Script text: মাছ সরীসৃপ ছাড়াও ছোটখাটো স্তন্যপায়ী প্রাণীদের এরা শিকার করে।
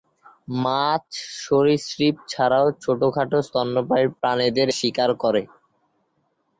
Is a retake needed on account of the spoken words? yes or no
yes